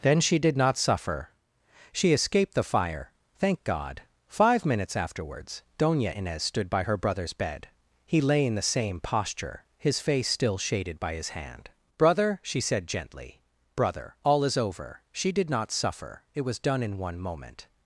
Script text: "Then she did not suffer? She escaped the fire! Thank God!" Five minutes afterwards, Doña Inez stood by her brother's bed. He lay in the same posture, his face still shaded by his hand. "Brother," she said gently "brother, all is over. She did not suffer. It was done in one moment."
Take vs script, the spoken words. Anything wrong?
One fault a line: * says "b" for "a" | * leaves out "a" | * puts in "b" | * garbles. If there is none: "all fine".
all fine